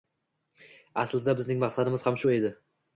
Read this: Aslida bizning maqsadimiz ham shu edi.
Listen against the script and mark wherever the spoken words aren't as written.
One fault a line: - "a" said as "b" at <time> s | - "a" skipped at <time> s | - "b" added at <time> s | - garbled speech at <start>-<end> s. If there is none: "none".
none